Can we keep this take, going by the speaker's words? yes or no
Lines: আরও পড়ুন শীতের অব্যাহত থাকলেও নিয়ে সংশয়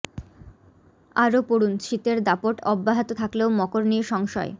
no